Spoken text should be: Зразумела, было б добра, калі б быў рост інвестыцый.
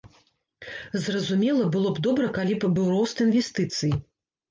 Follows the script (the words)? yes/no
yes